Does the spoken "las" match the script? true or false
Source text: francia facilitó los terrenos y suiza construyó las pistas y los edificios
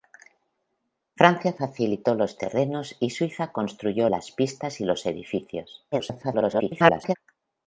true